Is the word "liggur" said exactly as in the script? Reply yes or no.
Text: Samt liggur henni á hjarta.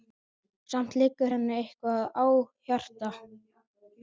yes